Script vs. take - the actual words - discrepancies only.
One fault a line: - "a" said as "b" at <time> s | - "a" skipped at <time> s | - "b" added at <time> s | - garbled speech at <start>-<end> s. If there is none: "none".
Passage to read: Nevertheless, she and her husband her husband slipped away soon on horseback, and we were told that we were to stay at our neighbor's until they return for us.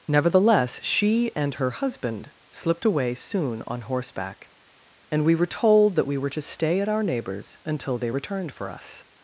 - "her husband" skipped at 2.3 s
- "return" said as "returned" at 8.1 s